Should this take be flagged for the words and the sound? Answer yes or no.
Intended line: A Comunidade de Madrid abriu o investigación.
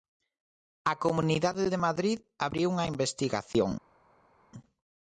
yes